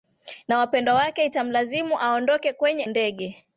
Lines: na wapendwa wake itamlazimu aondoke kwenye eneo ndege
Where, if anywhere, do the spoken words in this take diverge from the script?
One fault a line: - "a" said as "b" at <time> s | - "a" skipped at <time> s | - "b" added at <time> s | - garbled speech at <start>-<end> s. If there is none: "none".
- "eneo" skipped at 2.8 s